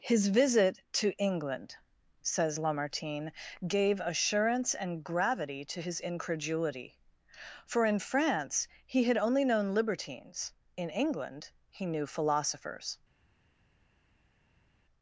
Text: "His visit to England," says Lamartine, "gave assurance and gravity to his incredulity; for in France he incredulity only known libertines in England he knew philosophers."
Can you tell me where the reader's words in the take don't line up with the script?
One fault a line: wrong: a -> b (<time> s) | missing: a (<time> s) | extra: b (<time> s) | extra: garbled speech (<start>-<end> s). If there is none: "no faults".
wrong: incredulity -> had (9.0 s)